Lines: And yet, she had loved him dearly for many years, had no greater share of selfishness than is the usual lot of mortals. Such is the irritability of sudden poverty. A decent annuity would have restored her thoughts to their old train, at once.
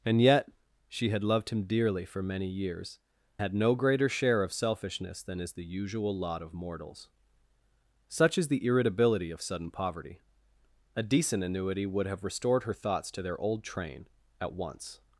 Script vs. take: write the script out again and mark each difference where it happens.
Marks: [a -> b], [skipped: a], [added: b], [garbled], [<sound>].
And yet, she had loved him dearly for many years, had no greater share of selfishness than is the usual lot of mortals. Such is the irritability of sudden poverty. A decent annuity would have restored her thoughts to their old train, at once.